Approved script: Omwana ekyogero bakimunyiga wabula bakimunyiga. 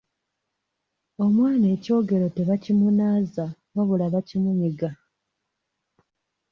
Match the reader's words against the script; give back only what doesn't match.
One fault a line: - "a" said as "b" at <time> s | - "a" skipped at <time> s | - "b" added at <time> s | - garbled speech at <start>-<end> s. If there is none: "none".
- "bakimunyiga" said as "tebakimunaaza" at 2.4 s